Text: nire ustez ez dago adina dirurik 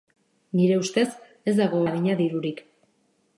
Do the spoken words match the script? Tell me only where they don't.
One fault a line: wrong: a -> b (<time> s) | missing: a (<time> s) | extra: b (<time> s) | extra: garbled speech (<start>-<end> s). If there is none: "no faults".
no faults